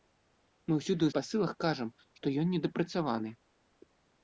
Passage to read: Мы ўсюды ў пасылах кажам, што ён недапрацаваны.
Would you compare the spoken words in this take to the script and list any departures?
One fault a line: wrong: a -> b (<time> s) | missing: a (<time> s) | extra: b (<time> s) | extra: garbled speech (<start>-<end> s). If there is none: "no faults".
no faults